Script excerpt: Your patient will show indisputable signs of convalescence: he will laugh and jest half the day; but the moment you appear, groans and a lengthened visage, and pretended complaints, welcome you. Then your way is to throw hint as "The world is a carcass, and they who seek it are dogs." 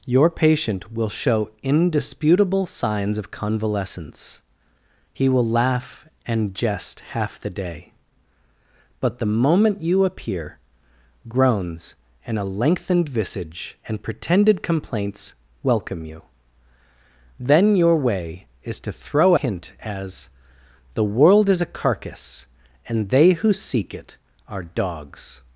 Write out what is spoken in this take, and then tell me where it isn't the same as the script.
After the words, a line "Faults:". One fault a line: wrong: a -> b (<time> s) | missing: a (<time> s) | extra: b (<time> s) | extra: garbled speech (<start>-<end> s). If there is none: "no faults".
Your patient will show indisputable signs of convalescence: he will laugh and jest half the day; but the moment you appear, groans and a lengthened visage, and pretended complaints, welcome you. Then your way is to throw hint as "The world is a carcass, and they who seek it are dogs."
Faults:
no faults